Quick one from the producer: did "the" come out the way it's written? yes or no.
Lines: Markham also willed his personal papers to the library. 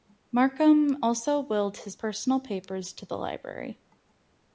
yes